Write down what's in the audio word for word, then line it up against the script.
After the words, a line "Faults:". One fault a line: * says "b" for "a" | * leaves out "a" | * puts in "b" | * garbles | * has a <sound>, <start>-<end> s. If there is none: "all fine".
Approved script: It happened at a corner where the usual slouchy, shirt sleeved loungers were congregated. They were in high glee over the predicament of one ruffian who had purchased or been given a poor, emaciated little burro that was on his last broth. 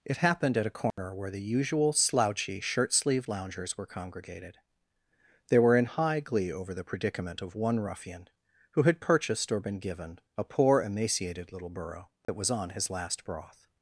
It happened at a corner where the usual slouchy, shirt sleeved loungers were congregated. They were in high glee over the predicament of one ruffian who had purchased or been given a poor, emaciated little burro that was on his last broth.
Faults:
* has a dropout, 0.9-1.0 s
* has a dropout, 12.2-12.3 s